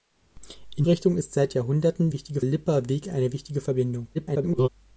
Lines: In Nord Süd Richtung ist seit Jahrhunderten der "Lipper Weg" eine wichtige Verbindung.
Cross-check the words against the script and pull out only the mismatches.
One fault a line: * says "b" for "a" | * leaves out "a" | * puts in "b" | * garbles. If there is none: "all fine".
* leaves out "Nord Süd"
* says "wichtige" for "der"
* garbles